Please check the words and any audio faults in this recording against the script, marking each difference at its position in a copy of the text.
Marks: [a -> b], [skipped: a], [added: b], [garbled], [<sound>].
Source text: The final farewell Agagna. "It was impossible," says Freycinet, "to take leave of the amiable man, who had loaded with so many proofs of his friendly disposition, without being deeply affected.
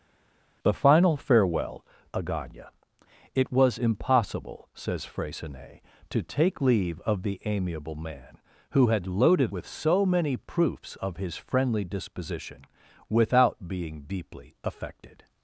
The final farewell Agagna. "It was impossible," says Freycinet, "to take leave of the amiable man, who had loaded with so many proofs of his friendly disposition, without being deeply affected.